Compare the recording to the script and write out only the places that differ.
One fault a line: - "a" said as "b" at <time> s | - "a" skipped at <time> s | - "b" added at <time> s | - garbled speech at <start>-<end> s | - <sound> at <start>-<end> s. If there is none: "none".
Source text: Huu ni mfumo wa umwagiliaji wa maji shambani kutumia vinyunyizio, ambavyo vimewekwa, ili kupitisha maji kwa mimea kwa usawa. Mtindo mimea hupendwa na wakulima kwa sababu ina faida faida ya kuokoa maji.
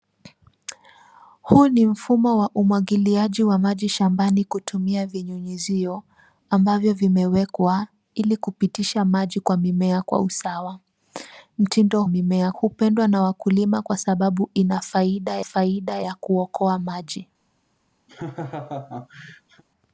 - laugh at 18.1-19.6 s